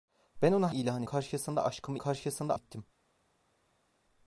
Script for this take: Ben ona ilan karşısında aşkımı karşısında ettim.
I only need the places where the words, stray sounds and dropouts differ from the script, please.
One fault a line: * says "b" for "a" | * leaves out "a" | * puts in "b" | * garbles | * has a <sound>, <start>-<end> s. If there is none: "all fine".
all fine